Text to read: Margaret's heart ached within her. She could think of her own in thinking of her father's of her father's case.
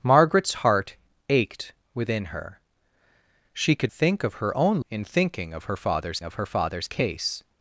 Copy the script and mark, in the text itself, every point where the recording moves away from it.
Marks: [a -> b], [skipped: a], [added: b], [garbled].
Margaret's heart ached within her. She could think of her own in thinking of her father's of her father's case.